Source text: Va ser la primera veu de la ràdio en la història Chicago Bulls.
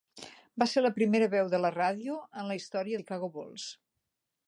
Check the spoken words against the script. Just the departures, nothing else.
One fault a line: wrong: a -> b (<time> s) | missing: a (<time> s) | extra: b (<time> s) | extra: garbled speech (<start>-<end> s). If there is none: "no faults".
no faults